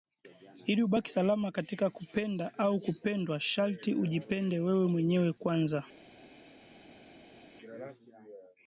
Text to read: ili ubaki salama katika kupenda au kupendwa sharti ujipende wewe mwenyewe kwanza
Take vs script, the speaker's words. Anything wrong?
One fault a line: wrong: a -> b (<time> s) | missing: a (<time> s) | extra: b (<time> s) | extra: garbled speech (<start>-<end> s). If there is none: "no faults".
no faults